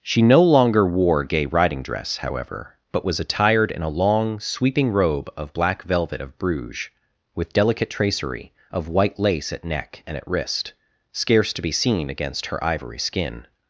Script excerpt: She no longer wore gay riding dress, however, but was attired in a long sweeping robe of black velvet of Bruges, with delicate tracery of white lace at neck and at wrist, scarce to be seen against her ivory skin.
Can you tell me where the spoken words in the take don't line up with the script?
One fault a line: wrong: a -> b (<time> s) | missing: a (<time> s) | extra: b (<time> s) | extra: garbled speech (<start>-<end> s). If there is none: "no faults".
no faults